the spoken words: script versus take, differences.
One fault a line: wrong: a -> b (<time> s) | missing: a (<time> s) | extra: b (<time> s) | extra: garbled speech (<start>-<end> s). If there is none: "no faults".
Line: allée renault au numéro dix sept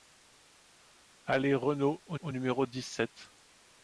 extra: au (2.2 s)